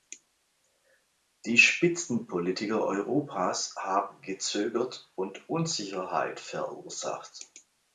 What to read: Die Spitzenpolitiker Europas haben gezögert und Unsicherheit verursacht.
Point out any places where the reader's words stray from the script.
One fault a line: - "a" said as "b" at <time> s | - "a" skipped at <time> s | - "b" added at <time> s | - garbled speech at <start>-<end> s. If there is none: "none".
none